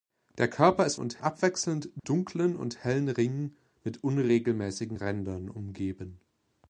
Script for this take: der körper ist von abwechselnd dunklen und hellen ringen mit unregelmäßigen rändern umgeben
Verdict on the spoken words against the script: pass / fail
fail